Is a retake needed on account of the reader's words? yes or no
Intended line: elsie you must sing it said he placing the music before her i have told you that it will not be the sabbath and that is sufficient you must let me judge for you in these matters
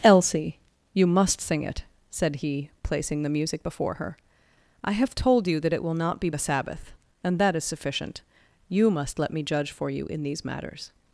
no